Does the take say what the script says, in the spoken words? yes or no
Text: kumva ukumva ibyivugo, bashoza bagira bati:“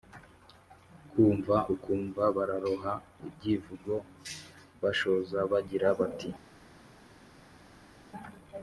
no